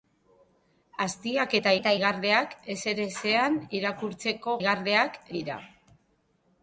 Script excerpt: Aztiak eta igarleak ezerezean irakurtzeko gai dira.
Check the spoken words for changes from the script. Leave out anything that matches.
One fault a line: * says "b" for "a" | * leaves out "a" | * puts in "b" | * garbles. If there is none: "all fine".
* puts in "eta"
* says "igarleak" for "gai"